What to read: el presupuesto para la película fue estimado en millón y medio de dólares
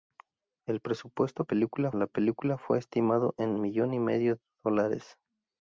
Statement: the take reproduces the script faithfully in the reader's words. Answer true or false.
false